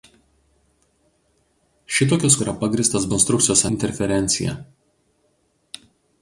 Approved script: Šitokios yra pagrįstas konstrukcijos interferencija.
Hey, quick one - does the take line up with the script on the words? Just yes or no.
yes